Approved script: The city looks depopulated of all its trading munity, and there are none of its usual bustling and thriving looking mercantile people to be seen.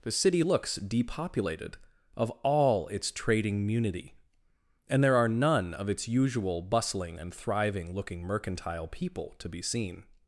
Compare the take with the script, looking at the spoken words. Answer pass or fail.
pass